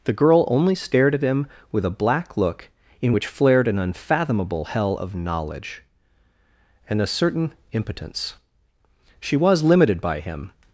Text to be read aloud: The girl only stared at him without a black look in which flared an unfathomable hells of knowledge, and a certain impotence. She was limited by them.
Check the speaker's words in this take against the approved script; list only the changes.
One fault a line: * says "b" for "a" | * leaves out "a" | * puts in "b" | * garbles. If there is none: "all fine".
* says "with" for "without"
* says "hell" for "hells"
* says "him" for "them"